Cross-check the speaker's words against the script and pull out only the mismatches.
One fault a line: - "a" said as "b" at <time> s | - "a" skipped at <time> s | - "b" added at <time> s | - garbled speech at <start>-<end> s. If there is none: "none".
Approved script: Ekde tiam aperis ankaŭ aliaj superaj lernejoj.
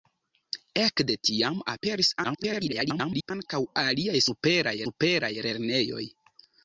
- garbled speech at 2.2-3.3 s
- "superaj" added at 4.9 s